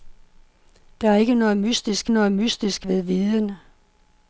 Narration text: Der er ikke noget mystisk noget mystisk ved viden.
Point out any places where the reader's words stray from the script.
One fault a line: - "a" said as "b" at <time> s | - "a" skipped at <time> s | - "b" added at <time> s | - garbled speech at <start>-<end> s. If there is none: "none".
none